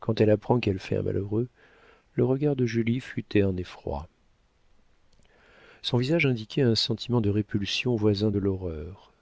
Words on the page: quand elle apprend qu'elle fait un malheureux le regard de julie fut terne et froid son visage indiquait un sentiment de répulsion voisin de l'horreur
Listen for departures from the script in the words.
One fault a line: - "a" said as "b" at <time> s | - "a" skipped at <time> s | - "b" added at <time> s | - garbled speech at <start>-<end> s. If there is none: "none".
none